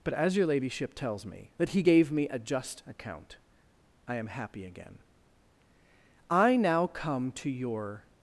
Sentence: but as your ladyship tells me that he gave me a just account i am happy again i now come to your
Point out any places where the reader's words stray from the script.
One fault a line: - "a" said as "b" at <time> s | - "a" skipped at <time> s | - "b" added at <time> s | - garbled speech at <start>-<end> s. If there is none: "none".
none